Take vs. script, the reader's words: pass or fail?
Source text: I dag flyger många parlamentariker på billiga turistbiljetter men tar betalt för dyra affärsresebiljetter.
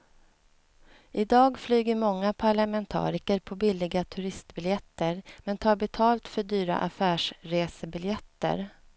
pass